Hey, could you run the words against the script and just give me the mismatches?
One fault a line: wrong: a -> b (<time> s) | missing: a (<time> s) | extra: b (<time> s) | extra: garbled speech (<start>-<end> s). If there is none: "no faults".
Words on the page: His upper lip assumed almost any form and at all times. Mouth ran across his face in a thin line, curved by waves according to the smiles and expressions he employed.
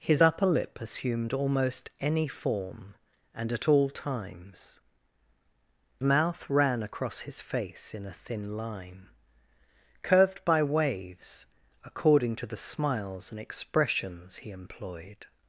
no faults